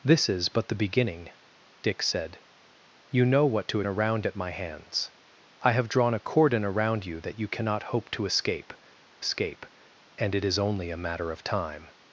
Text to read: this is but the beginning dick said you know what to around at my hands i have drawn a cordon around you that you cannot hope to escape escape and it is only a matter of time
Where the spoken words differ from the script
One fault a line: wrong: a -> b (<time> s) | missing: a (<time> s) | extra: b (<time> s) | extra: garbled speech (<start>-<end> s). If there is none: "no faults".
no faults